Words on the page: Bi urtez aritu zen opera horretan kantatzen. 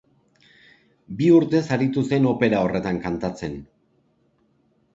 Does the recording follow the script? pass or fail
pass